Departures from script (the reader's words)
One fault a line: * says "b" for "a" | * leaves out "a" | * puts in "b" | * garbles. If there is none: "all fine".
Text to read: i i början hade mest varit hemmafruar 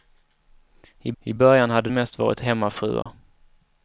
all fine